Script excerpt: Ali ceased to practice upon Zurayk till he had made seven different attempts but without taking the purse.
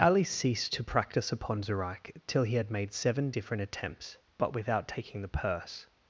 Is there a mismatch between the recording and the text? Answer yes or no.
no